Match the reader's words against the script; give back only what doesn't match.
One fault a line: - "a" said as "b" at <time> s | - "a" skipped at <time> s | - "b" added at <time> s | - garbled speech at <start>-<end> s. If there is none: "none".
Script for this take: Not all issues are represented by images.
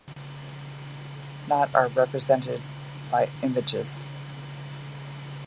- "all issues" skipped at 1.7 s